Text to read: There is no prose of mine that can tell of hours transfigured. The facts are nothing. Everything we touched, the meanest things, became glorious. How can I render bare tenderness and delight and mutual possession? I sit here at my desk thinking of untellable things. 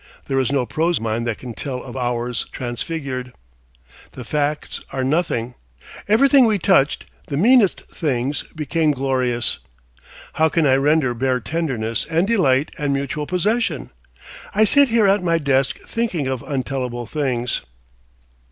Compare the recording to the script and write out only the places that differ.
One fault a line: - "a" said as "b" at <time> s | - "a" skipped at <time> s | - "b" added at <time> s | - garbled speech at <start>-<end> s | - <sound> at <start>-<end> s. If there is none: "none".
- "of" skipped at 1.0 s